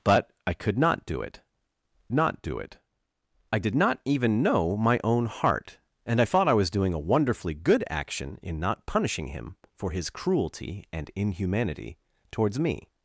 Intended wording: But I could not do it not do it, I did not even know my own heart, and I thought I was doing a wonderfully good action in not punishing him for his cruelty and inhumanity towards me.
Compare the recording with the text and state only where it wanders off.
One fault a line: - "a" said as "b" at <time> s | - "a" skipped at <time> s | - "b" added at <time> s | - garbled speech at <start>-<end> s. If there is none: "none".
none